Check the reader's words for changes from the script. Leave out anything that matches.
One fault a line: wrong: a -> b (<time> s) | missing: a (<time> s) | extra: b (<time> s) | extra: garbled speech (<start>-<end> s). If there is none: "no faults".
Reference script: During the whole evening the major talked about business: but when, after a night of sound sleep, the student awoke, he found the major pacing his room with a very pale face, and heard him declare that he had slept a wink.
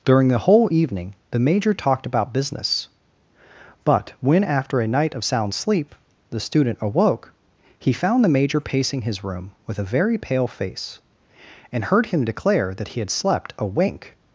no faults